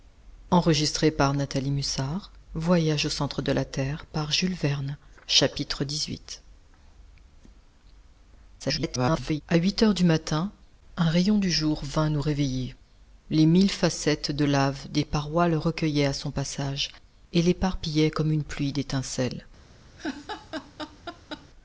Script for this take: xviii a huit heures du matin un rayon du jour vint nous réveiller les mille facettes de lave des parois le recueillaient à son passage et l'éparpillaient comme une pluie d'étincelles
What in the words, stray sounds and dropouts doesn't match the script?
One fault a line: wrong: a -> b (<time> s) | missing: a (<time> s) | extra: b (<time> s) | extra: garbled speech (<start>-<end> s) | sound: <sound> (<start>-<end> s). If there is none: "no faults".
extra: garbled speech (8.6-9.4 s)
sound: laugh (20.0-21.5 s)